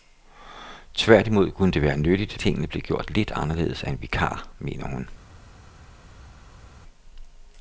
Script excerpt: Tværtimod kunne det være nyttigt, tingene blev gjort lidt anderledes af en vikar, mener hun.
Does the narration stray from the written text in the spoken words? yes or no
no